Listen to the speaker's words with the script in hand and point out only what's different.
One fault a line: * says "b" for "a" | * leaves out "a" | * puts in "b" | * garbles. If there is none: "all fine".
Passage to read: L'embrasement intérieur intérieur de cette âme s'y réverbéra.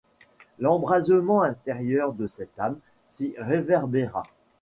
* leaves out "intérieur"